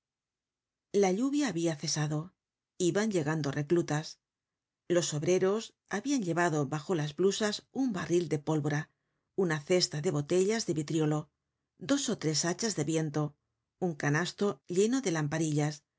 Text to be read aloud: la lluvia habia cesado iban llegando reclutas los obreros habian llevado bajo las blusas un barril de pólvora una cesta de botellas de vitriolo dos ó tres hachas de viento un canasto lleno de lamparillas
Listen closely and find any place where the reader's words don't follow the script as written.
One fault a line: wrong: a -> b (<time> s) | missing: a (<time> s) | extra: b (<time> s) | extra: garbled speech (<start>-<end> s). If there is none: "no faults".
no faults